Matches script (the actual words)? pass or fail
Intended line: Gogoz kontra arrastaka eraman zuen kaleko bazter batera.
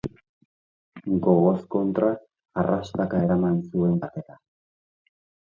fail